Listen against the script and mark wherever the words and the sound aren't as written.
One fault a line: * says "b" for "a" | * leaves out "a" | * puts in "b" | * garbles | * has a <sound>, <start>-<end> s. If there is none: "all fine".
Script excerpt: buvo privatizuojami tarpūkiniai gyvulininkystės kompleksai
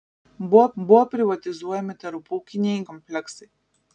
* puts in "buvo"
* leaves out "gyvulininkystės"